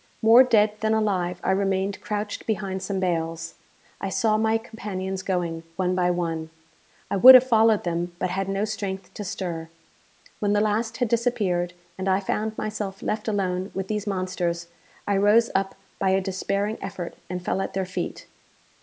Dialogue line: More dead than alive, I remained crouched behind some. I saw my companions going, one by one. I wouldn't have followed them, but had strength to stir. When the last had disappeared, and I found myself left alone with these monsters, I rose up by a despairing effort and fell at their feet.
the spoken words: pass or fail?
fail